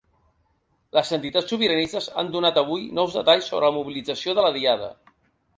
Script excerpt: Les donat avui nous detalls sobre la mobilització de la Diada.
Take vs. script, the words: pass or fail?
fail